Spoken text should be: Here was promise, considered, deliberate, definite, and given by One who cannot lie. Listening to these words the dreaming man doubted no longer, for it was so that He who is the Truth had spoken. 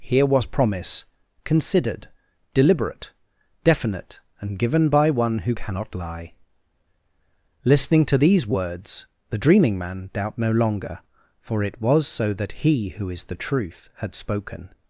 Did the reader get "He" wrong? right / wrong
right